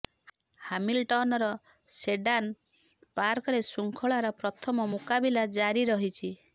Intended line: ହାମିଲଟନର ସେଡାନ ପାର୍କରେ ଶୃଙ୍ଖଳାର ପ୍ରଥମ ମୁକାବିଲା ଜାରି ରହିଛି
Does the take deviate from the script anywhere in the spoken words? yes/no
no